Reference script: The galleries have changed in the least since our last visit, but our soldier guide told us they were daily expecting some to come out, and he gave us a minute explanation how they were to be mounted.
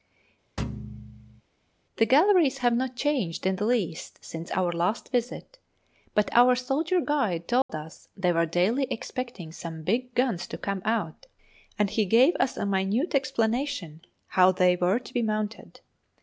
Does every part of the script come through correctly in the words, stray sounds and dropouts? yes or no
no